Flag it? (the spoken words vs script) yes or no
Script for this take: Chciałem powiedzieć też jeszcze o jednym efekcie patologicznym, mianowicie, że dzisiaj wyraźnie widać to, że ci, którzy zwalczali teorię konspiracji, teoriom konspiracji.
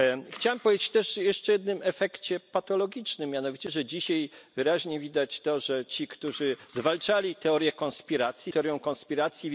no